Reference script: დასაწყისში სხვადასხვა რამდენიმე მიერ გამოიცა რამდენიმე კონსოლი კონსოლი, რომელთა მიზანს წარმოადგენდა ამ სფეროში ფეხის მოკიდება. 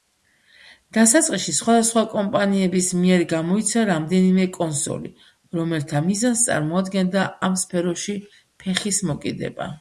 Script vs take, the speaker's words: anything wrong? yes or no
yes